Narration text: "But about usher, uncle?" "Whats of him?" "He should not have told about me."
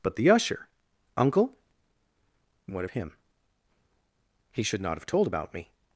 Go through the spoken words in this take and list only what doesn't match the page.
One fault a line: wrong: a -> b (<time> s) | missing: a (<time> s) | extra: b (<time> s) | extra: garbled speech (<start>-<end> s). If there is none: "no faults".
wrong: about -> the (0.1 s)
wrong: Whats -> What (2.6 s)